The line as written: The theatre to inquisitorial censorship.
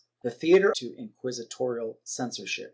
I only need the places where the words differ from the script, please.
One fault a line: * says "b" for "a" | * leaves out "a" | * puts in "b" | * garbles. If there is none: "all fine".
all fine